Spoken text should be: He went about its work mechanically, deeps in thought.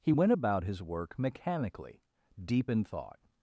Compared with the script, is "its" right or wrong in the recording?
wrong